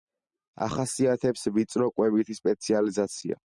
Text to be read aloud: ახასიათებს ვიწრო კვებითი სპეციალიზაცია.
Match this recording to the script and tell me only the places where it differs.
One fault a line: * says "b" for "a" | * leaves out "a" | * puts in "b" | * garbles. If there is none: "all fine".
all fine